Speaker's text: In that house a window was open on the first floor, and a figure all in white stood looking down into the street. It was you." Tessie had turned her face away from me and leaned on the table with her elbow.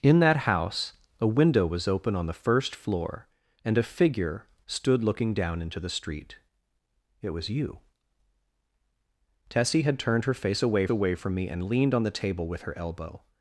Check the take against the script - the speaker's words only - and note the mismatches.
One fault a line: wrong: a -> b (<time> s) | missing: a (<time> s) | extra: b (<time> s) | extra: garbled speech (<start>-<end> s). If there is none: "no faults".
missing: all in white (4.5 s)
extra: away (10.9 s)